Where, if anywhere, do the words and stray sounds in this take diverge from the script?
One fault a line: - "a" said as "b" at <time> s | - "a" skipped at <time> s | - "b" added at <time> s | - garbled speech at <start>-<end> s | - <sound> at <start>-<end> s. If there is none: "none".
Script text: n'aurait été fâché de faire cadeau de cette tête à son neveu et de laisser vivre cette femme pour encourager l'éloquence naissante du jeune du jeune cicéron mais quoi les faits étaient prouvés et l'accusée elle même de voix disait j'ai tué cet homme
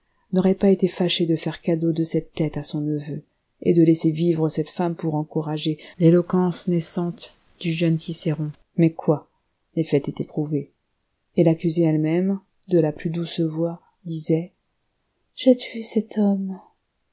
- "pas" added at 0.6 s
- "du jeune" skipped at 8.0 s
- "la plus douce" added at 12.8 s